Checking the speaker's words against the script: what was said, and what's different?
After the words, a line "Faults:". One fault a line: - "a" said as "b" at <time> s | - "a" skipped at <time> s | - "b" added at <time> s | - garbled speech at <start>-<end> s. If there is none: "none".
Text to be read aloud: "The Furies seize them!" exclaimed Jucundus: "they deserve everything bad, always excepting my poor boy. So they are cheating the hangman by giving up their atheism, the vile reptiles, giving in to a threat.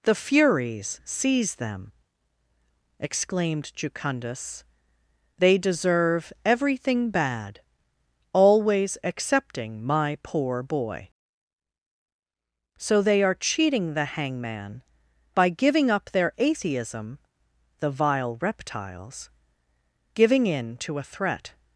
"The Furies seize them!" exclaimed Jucundus: "they deserve everything bad, always excepting my poor boy. So they are cheating the hangman by giving up their atheism, the vile reptiles, giving in to a threat.
Faults:
none